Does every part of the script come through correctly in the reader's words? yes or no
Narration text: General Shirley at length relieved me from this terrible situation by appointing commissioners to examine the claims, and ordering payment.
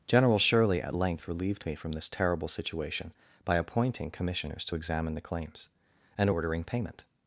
yes